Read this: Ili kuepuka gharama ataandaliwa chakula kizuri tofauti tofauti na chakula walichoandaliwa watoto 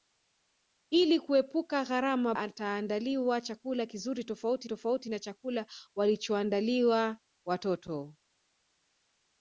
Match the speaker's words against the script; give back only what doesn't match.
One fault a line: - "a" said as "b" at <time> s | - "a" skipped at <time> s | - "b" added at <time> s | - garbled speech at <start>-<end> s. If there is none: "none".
none